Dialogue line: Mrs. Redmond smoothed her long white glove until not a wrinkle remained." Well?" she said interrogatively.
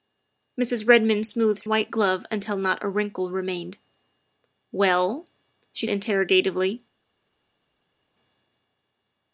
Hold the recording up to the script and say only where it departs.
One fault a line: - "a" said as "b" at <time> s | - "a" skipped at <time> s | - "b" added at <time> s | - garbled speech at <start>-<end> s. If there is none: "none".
- "her long" skipped at 1.6 s
- "said" skipped at 5.9 s